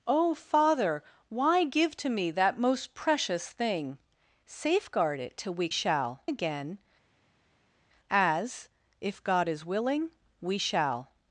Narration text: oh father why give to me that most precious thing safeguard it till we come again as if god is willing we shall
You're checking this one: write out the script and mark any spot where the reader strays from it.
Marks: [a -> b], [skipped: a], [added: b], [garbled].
oh father why give to me that most precious thing safeguard it till we [come -> shall] again as if god is willing we shall